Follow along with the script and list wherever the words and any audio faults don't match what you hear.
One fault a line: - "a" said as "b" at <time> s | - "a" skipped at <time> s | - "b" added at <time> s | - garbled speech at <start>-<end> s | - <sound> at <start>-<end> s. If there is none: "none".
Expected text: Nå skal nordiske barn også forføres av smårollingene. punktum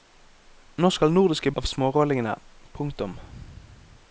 - "barn også forføres" skipped at 1.5 s